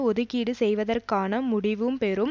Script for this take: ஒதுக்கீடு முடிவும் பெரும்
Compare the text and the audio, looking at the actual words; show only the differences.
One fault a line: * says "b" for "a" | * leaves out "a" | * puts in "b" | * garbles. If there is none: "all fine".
* puts in "செய்வதற்கான"